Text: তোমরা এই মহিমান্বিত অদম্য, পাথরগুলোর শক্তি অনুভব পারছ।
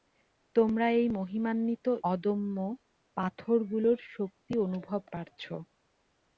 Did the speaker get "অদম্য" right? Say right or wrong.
right